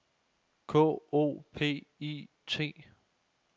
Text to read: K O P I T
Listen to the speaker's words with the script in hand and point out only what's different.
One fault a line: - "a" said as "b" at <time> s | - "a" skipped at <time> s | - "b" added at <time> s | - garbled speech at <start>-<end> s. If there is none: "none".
none